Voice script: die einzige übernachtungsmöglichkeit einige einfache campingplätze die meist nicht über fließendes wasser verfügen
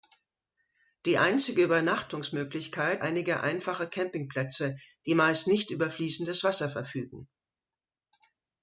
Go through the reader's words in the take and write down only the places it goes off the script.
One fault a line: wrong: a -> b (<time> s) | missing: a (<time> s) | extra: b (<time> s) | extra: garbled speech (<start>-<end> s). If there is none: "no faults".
no faults